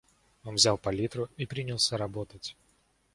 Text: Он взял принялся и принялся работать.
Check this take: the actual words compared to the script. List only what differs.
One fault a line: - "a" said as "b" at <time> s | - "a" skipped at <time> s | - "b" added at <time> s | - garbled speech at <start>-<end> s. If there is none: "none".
- "принялся" said as "палитру" at 0.8 s